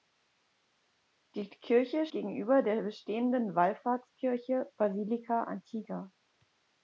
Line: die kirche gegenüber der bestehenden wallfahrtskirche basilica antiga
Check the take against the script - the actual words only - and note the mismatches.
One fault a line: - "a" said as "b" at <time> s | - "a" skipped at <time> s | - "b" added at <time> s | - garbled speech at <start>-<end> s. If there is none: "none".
none